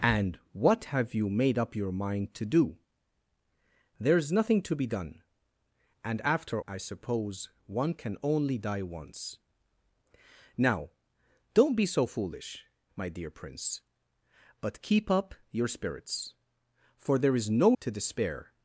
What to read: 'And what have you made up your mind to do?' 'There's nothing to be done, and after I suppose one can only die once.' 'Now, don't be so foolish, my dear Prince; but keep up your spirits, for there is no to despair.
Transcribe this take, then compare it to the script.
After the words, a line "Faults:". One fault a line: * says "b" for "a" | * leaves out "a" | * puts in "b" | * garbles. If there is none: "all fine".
'And what have you made up your mind to do?' 'There's nothing to be done, and after I suppose one can only die once.' 'Now, don't be so foolish, my dear Prince; but keep up your spirits, for there is no to despair.
Faults:
all fine